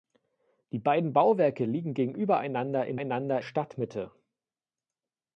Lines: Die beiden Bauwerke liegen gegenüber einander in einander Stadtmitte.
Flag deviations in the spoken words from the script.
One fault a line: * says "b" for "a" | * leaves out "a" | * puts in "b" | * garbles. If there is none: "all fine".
all fine